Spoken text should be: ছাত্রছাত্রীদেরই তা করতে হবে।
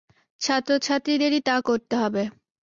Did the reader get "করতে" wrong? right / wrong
right